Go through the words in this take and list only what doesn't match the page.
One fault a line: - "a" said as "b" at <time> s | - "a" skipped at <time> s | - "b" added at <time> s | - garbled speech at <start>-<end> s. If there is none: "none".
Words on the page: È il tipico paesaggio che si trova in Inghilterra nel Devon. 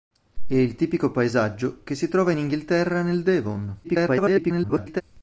- garbled speech at 3.8-5.0 s